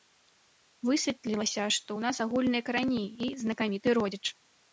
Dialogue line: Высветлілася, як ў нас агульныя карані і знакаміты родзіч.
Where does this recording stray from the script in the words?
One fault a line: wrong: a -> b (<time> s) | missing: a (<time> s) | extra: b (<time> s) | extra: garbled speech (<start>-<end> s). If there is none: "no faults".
wrong: як -> што (1.8 s)